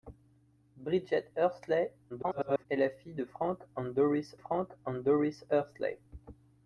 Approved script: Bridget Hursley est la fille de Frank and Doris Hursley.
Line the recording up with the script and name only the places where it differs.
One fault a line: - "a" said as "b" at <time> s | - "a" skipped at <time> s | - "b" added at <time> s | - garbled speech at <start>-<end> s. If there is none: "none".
- garbled speech at 2.1-2.7 s
- "Frank and Doris" added at 4.4 s